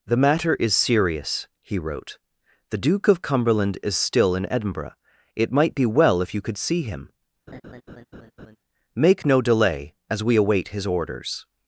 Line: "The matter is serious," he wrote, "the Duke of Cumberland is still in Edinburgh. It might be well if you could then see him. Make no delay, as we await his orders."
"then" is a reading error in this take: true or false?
true